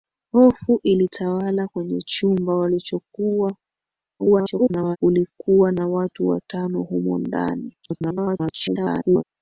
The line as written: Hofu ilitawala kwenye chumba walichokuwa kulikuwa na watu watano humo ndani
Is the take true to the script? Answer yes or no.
no